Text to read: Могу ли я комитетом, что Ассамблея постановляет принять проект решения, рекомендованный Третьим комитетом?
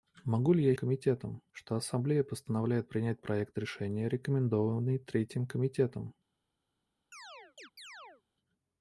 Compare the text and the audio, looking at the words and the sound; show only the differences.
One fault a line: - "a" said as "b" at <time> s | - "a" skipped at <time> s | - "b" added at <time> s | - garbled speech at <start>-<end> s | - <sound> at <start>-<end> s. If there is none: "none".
- chirp at 7.1-8.2 s